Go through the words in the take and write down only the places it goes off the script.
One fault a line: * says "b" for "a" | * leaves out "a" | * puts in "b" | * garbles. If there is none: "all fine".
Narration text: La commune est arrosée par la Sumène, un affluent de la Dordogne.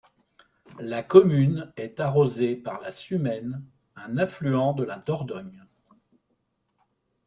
all fine